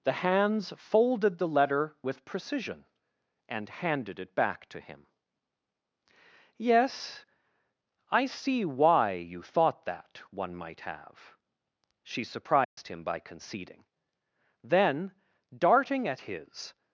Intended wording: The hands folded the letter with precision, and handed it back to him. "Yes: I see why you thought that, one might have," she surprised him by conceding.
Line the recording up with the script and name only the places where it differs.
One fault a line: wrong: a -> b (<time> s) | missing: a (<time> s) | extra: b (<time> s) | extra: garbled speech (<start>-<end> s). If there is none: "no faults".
extra: Then darting at his (14.7 s)